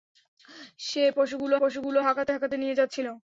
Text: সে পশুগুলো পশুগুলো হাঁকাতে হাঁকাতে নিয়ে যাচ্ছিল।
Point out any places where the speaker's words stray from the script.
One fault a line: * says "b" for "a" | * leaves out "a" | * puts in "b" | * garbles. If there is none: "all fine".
all fine